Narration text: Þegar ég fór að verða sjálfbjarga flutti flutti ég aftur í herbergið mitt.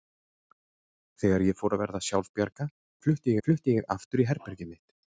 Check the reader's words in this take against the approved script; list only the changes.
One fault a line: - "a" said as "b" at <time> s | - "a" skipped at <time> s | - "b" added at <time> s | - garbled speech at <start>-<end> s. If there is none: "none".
none